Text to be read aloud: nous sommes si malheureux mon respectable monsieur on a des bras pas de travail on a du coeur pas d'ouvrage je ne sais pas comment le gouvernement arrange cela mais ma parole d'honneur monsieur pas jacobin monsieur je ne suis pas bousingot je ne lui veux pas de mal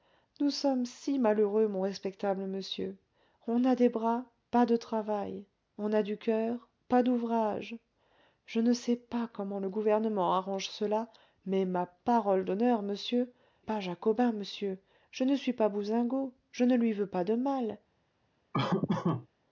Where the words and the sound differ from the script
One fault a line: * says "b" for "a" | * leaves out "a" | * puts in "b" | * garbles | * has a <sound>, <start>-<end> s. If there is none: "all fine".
* has a laugh, 18.5-19.3 s